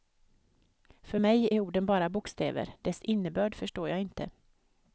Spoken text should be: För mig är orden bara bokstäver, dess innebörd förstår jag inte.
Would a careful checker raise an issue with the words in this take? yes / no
no